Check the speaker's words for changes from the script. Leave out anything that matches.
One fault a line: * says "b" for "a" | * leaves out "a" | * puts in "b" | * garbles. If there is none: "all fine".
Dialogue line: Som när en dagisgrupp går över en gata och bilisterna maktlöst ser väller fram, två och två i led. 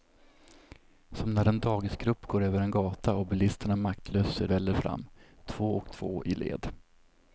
all fine